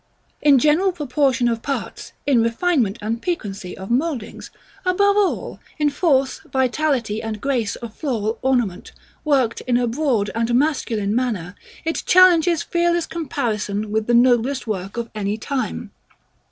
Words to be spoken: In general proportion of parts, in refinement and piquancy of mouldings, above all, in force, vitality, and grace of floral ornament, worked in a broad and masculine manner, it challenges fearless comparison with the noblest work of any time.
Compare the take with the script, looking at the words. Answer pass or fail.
pass